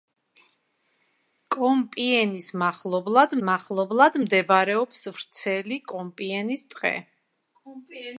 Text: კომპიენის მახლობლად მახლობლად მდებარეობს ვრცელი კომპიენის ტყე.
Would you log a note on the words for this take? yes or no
no